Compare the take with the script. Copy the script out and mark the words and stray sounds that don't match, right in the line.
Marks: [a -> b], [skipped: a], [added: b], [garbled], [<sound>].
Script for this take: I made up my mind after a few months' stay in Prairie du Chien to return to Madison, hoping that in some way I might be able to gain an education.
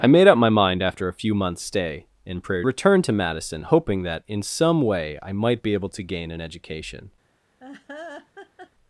I made up my mind after a few months' stay in Prairie [skipped: du Chien to] return to Madison, hoping that in some way I might be able to gain an education. [laugh]